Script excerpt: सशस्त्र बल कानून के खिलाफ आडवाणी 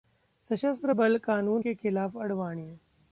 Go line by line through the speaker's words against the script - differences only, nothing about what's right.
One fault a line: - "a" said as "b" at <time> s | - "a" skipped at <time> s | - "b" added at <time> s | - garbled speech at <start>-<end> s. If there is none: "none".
none